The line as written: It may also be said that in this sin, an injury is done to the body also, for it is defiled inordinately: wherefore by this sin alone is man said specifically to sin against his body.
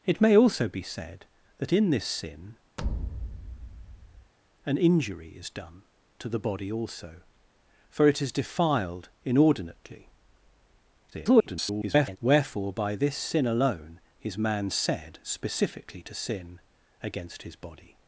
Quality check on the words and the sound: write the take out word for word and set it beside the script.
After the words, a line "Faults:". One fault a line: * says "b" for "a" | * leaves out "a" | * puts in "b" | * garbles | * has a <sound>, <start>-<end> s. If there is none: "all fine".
It may also be said that in this sin, an injury is done to the body also, for it is defiled inordinately: [garbled] wherefore by this sin alone is man said specifically to sin against his body.
Faults:
* has a thud, 2.8-4.3 s
* garbles